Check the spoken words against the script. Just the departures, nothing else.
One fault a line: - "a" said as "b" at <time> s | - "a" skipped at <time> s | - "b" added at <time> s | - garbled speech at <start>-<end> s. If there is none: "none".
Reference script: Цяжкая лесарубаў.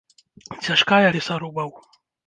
none